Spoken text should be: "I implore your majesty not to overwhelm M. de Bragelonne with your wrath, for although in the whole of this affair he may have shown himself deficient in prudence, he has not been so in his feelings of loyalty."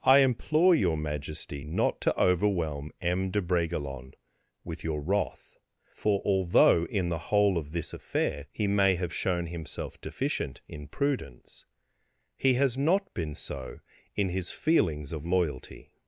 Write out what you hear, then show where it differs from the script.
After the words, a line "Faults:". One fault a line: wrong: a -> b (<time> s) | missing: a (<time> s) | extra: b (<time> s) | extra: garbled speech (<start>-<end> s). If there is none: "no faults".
"I implore your majesty not to overwhelm M. de Bragelonne with your wrath, for although in the whole of this affair he may have shown himself deficient in prudence, he has not been so in his feelings of loyalty."
Faults:
no faults